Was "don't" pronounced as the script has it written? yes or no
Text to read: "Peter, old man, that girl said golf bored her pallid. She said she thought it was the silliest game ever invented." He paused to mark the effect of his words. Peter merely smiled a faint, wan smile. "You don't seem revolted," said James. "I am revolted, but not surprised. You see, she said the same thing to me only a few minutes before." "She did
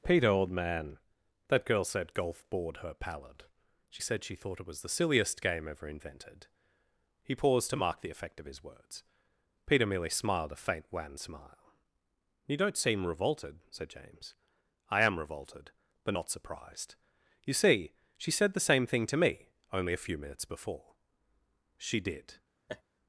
yes